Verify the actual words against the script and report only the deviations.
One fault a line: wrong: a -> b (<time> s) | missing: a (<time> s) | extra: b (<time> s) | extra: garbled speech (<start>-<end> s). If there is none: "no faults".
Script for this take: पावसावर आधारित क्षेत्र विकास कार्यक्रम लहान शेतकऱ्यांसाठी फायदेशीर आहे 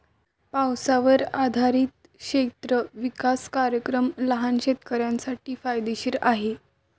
no faults